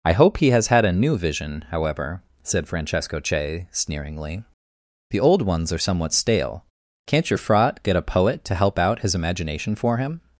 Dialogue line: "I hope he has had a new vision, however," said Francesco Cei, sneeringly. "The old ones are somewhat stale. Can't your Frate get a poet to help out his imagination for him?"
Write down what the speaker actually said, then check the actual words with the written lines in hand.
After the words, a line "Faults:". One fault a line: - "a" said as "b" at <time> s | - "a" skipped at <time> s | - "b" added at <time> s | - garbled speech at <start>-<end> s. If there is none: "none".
"I hope he has had a new vision, however," said Francesco Cei, sneeringly. "The old ones are somewhat stale. Can't your Frate get a poet to help out his imagination for him?"
Faults:
none